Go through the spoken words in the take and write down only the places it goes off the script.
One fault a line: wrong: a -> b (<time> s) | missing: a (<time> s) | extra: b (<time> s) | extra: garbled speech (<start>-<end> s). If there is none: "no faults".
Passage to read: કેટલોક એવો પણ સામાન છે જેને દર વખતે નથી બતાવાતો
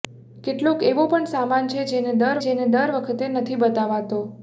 extra: જેને દર (2.4 s)